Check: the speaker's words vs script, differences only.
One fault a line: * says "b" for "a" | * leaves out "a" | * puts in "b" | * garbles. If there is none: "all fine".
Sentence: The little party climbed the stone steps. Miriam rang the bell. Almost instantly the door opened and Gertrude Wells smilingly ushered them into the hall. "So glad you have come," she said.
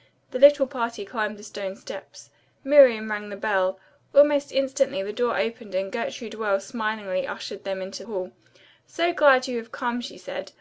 * leaves out "the"